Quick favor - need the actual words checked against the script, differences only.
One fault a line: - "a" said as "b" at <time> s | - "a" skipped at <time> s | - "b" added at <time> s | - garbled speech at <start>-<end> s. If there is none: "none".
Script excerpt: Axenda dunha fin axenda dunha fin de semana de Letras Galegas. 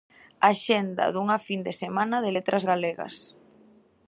- "axenda dunha fin" skipped at 1.6 s